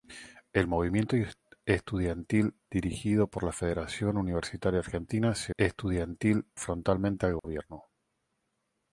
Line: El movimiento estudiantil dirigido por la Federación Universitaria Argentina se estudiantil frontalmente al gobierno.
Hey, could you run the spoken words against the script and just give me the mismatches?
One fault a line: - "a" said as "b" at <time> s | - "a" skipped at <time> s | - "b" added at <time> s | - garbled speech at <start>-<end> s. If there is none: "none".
none